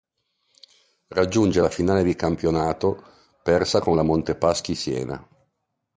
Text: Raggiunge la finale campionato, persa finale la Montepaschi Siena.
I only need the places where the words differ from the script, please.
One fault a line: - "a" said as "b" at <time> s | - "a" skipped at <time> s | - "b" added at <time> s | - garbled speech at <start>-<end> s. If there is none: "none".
- "di" added at 2.0 s
- "finale" said as "con" at 3.8 s